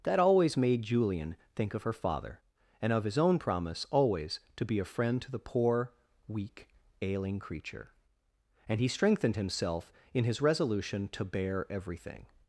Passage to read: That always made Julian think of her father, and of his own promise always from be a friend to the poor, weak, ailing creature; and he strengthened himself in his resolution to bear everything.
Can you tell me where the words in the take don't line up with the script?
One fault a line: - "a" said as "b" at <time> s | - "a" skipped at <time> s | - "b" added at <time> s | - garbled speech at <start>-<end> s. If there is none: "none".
- "from" said as "to" at 4.5 s